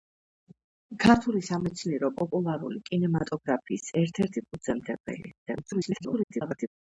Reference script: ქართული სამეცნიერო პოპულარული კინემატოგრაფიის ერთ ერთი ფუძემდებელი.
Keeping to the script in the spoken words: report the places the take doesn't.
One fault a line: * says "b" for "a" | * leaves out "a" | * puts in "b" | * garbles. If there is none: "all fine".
* garbles